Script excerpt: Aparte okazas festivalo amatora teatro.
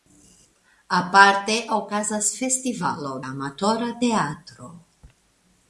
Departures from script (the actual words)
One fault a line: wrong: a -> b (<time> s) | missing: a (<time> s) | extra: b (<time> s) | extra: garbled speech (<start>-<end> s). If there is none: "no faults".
no faults